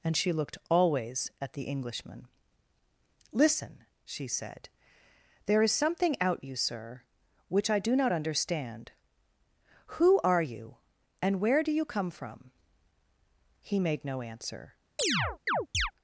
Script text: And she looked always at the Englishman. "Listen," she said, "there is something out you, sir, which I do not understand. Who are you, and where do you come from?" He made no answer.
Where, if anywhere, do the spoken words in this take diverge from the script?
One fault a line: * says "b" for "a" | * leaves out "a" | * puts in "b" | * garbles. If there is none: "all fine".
all fine